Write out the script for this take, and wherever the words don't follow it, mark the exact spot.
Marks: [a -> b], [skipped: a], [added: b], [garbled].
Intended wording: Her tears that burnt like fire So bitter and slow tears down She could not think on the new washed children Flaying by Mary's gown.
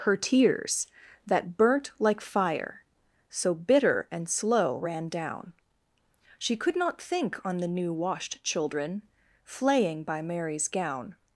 Her tears that burnt like fire So bitter and slow [tears -> ran] down She could not think on the new washed children Flaying by Mary's gown.